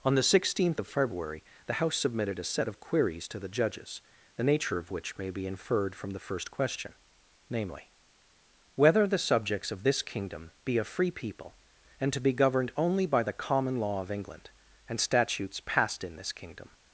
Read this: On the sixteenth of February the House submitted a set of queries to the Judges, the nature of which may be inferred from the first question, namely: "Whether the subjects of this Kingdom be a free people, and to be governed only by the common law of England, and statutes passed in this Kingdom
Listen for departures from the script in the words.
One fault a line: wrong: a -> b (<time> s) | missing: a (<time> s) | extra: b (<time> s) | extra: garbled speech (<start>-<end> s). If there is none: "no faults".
no faults